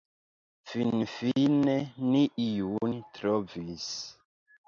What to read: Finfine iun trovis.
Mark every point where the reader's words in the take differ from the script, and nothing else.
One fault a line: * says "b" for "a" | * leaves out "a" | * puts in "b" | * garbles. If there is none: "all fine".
* puts in "ni"